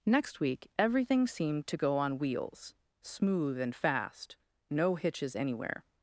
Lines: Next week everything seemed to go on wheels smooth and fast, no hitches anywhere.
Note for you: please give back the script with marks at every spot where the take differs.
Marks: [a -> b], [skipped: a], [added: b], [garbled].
Next week everything seemed to go on wheels smooth and fast, no hitches anywhere.